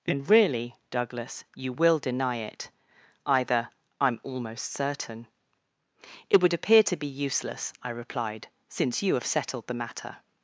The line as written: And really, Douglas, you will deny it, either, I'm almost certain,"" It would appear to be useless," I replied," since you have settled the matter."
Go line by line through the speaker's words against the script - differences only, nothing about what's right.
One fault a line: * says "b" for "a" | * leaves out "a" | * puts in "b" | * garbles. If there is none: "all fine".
all fine